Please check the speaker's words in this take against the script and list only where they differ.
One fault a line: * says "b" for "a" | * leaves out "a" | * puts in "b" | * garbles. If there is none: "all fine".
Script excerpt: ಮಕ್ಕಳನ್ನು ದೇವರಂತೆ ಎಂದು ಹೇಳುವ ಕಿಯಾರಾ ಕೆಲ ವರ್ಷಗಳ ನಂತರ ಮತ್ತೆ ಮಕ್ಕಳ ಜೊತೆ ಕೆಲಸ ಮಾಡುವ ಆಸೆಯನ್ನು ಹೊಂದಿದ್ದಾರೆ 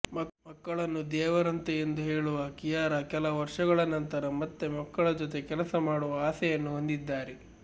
all fine